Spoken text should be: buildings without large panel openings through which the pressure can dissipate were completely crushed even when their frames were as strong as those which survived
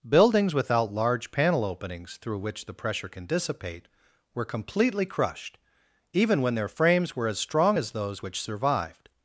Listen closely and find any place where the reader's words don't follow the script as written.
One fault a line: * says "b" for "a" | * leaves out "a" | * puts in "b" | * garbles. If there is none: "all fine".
all fine